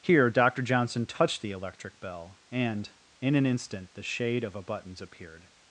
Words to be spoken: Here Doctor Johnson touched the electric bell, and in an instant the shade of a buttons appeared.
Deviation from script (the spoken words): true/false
false